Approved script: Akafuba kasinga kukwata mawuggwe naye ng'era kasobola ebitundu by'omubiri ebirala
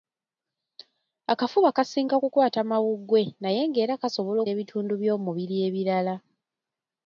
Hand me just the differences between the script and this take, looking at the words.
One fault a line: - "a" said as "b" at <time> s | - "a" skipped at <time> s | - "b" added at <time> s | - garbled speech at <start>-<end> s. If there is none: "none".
none